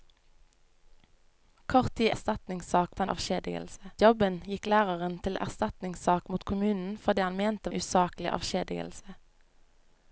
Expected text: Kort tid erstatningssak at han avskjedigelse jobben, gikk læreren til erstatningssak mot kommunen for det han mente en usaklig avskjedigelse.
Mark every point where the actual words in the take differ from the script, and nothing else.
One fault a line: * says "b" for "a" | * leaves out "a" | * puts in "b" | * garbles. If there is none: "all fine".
all fine